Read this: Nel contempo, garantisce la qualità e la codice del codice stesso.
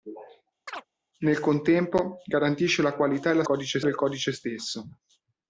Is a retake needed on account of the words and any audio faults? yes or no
yes